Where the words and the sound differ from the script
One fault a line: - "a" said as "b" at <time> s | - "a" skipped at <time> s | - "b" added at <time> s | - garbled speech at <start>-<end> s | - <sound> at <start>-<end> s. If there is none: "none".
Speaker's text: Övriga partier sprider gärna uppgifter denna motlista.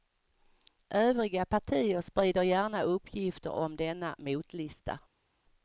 - "om" added at 3.5 s